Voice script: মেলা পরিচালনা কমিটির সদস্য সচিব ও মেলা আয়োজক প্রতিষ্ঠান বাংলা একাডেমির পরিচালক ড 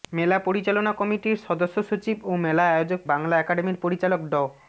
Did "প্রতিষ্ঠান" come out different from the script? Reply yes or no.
yes